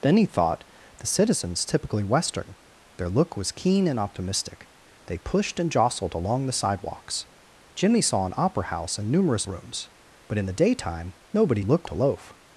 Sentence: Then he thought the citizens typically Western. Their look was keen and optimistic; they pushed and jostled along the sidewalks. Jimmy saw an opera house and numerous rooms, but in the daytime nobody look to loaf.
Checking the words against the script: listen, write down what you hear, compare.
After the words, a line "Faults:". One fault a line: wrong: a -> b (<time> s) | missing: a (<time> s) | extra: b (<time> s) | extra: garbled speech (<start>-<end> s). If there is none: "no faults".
Then he thought the citizens typically Western. Their look was keen and optimistic; they pushed and jostled along the sidewalks. Jimmy saw an opera house and numerous rooms, but in the daytime nobody look to loaf.
Faults:
no faults